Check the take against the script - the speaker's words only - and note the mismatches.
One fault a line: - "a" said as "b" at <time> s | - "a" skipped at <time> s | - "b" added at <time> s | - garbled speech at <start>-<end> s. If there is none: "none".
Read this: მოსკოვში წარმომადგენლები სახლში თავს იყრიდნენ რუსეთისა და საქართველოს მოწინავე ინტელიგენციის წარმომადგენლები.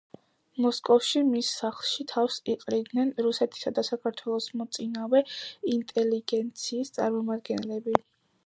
- "წარმომადგენლები" said as "მის" at 1.3 s